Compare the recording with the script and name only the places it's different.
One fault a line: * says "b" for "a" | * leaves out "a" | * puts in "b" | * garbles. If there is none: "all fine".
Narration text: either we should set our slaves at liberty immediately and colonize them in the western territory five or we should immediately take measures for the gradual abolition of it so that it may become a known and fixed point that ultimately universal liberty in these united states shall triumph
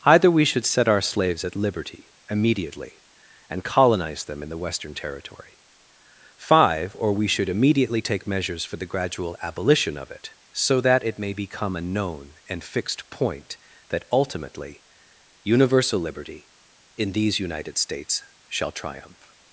all fine